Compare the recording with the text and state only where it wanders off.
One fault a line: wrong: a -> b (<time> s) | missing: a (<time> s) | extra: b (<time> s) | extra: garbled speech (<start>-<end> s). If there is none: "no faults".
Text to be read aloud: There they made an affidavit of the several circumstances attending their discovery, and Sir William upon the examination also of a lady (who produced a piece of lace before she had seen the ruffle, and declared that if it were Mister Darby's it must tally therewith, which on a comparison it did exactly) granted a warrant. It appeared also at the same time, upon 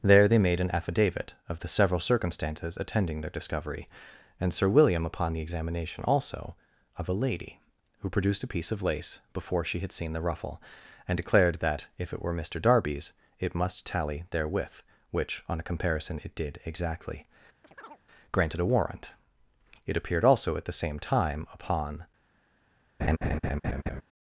no faults